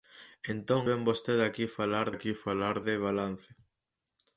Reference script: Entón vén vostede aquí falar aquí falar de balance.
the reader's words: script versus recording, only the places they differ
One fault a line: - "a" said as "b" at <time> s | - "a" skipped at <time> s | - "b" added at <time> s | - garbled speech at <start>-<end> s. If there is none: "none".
none